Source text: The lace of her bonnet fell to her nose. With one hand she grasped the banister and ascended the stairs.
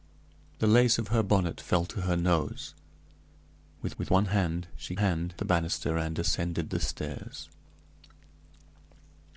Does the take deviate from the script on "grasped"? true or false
true